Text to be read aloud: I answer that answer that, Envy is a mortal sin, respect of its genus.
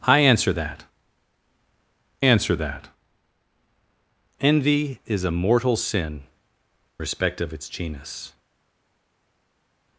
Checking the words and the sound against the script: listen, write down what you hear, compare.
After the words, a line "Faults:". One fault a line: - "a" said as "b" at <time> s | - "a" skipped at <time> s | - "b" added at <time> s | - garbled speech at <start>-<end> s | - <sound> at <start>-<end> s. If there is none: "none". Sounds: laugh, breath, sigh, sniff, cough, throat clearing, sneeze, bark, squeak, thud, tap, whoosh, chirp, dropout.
I answer that answer that, Envy is a mortal sin, respect of its genus.
Faults:
none